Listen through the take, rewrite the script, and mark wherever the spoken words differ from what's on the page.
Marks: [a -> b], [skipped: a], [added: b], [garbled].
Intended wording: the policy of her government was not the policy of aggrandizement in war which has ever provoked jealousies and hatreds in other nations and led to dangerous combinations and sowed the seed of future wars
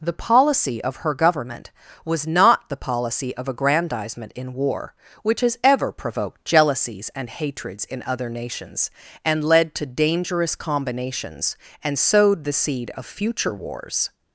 the policy of her government was not the policy of aggrandizement in war which has ever provoked jealousies and hatreds in other nations and led to dangerous combinations and sowed the seed of future wars